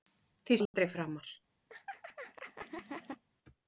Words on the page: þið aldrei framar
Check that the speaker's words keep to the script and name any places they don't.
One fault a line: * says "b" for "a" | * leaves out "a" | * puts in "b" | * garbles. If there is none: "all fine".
all fine